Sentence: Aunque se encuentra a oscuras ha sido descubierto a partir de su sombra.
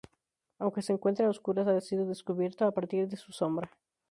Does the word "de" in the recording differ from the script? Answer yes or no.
no